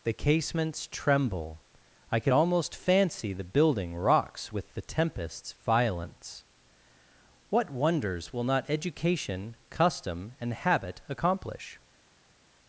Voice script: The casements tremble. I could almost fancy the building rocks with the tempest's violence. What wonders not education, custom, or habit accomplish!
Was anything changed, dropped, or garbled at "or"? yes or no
yes